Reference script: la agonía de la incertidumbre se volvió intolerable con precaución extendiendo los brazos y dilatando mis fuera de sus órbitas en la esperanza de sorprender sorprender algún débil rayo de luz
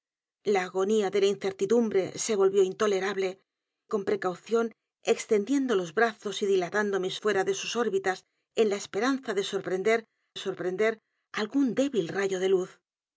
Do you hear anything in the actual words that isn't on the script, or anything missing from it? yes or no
no